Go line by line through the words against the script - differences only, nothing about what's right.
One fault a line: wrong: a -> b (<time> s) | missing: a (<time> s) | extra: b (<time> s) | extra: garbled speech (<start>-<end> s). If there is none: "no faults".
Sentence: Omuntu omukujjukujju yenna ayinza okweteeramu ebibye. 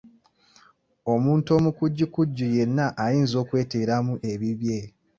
no faults